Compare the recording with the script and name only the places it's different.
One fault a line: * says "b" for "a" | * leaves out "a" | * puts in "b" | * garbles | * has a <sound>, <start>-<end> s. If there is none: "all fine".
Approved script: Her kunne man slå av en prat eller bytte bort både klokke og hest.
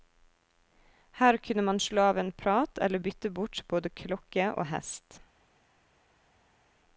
all fine